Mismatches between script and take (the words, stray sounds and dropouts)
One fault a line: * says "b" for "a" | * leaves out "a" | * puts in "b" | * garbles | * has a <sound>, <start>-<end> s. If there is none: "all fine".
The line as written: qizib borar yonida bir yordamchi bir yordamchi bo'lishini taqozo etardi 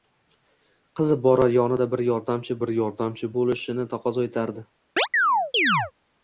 * has a chirp, 5.0-5.9 s